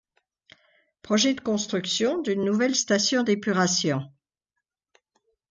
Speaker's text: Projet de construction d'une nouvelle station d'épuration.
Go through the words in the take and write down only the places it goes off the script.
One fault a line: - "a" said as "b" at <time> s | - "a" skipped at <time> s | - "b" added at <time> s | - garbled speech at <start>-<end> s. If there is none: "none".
none